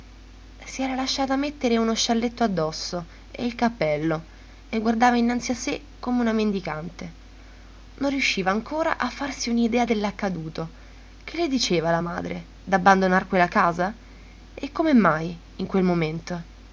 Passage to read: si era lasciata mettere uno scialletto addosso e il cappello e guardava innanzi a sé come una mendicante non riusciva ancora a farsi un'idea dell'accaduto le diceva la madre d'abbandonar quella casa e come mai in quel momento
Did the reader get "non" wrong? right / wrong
right